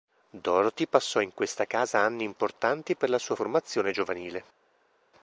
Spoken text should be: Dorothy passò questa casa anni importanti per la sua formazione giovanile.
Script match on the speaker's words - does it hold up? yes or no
no